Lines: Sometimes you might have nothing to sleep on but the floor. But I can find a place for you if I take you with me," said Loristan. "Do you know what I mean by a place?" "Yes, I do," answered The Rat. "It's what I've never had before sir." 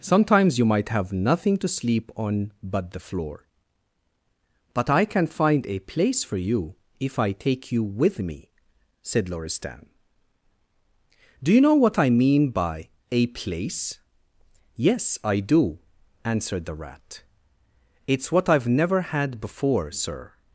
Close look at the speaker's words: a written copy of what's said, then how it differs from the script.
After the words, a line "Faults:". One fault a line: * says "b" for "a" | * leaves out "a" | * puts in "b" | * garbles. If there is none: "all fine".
Sometimes you might have nothing to sleep on but the floor. But I can find a place for you if I take you with me," said Loristan. "Do you know what I mean by a place?" "Yes, I do," answered The Rat. "It's what I've never had before sir."
Faults:
all fine